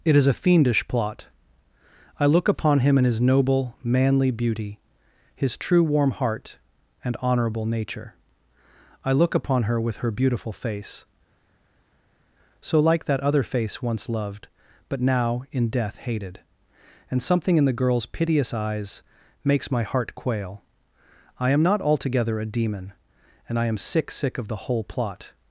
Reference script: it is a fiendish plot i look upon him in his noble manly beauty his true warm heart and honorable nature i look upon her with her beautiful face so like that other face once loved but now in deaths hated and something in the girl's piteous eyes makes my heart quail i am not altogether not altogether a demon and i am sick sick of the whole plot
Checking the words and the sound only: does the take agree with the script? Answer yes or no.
no